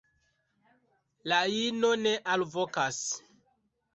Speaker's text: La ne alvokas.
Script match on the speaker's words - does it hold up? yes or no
no